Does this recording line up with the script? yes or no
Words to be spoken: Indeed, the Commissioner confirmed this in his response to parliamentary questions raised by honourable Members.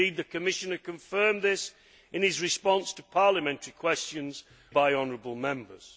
no